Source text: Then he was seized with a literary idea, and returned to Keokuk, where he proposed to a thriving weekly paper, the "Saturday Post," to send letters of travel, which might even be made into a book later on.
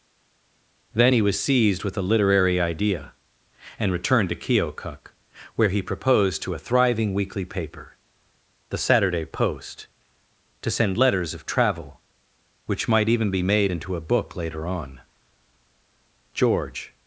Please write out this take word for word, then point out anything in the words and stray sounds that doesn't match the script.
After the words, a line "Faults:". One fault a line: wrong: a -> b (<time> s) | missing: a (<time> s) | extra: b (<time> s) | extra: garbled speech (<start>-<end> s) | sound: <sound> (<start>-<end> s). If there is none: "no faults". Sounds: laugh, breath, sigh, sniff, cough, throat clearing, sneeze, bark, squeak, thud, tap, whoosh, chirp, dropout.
Then he was seized with a literary idea, and returned to Keokuk, where he proposed to a thriving weekly paper, the "Saturday Post," to send letters of travel, which might even be made into a book later on. George
Faults:
extra: George (16.3 s)